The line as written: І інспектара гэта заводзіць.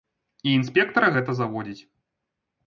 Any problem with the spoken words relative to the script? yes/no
no